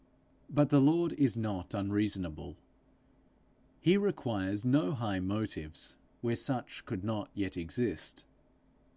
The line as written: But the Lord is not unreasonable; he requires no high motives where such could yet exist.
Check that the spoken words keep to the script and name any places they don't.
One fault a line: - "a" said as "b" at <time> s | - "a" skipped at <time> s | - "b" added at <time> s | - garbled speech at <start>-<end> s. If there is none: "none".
- "not" added at 7.0 s